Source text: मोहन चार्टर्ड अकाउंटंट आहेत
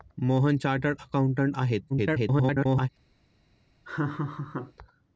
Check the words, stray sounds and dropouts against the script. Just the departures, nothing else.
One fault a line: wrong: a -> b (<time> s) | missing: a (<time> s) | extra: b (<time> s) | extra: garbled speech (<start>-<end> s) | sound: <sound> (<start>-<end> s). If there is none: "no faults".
extra: garbled speech (1.9-2.9 s)
sound: laugh (3.8-4.7 s)